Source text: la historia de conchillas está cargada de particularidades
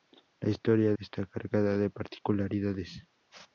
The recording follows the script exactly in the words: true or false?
false